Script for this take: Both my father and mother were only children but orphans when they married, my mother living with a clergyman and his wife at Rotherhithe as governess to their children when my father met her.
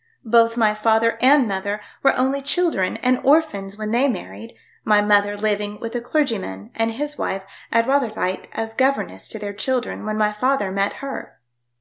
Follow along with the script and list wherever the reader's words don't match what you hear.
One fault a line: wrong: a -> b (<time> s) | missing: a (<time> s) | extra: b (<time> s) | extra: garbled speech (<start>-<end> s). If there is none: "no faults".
wrong: but -> and (3.0 s)